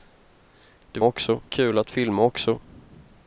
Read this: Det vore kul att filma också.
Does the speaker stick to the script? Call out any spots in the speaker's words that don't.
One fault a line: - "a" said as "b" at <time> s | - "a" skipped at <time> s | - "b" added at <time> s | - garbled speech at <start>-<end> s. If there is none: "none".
- "vore" said as "också" at 1.0 s